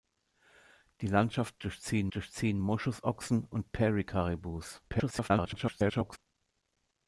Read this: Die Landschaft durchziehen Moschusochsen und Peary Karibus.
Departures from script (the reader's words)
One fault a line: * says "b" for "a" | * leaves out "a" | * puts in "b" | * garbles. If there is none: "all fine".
* puts in "durchziehen"
* garbles